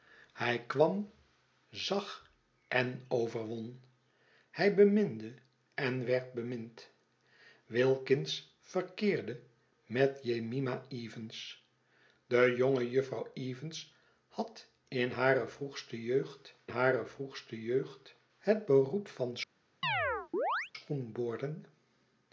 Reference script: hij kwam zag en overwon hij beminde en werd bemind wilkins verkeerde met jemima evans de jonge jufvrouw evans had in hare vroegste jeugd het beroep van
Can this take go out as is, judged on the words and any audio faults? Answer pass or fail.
fail